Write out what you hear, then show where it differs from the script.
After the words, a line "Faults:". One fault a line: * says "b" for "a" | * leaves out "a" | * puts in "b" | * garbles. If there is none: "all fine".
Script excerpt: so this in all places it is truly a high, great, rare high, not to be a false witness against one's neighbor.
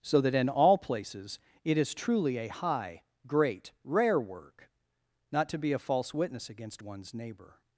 so that in all places it is truly a high, great, rare work, not to be a false witness against one's neighbor.
Faults:
* says "that" for "this"
* says "work" for "high"